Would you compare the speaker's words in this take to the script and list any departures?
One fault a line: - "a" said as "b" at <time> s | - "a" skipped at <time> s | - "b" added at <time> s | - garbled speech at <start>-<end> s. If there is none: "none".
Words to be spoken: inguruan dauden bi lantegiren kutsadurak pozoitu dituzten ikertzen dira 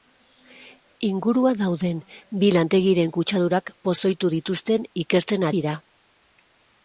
none